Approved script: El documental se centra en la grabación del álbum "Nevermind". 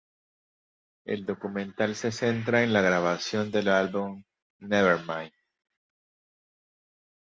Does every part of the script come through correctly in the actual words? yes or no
yes